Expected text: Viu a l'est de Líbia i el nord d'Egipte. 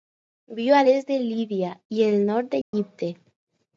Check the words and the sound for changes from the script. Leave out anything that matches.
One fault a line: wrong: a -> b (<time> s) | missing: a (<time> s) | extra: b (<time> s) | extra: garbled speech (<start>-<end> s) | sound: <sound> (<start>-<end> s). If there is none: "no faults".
sound: dropout (2.6-2.7 s)